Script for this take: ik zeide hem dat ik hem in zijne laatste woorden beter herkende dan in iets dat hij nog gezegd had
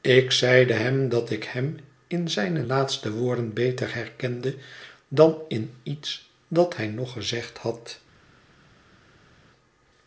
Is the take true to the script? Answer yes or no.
yes